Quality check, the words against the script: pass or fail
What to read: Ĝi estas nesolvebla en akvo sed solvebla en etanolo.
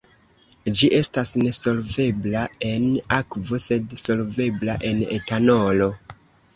pass